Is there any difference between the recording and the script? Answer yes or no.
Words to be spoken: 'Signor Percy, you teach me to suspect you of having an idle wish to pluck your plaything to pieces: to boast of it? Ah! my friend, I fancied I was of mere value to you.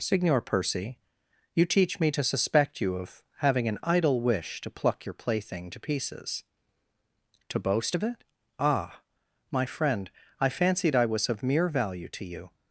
no